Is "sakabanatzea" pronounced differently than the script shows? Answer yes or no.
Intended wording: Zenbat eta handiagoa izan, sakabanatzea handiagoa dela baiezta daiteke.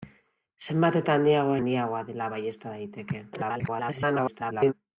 yes